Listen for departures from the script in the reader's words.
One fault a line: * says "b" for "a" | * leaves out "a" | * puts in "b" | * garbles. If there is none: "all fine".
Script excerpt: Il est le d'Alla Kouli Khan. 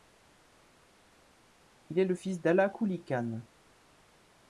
* puts in "fils"